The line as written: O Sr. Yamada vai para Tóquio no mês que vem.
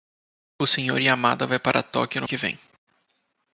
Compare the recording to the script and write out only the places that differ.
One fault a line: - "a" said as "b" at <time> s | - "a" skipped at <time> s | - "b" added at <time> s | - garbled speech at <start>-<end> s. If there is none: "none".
- "mês" skipped at 2.3 s